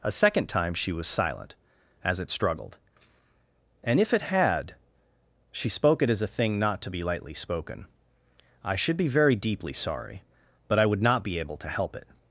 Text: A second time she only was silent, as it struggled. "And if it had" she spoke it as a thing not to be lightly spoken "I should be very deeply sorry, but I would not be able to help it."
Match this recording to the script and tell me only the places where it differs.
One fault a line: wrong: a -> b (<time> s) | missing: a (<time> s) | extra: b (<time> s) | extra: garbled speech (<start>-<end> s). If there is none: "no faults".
missing: only (0.9 s)